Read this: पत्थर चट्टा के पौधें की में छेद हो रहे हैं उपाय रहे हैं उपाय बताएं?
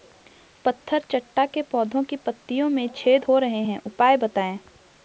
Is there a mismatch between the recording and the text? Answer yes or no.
yes